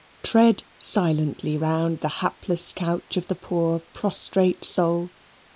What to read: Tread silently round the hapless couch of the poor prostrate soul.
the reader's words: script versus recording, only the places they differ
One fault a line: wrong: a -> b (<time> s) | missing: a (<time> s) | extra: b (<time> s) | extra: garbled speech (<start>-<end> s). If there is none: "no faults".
no faults